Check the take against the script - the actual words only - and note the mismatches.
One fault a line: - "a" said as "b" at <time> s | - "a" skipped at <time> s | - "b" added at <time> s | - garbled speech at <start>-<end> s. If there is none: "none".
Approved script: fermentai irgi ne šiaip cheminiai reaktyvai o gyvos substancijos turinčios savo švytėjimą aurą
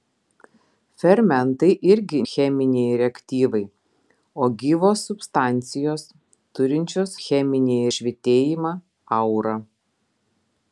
- "ne šiaip" skipped at 2.2 s
- "savo" said as "cheminiai" at 7.2 s